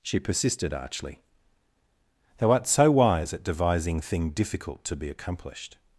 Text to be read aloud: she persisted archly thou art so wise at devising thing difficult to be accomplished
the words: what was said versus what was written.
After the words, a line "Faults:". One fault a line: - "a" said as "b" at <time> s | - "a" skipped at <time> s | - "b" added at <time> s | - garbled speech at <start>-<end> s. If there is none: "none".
she persisted archly thou art so wise at devising thing difficult to be accomplished
Faults:
none